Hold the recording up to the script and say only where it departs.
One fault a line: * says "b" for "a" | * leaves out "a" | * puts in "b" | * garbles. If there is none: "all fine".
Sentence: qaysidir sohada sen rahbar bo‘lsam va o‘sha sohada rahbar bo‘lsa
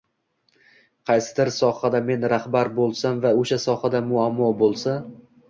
* says "men" for "sen"
* says "muammo" for "rahbar"